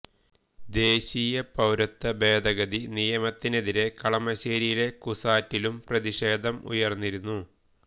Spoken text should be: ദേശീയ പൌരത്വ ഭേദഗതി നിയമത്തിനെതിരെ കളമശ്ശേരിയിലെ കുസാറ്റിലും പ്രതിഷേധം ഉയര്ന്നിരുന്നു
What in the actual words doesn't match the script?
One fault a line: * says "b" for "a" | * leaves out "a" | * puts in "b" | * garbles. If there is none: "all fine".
all fine